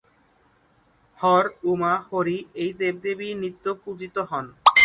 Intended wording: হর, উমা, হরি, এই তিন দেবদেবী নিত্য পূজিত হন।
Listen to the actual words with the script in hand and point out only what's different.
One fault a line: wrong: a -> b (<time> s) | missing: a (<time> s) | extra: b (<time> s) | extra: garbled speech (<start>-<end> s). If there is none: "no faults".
missing: তিন (2.7 s)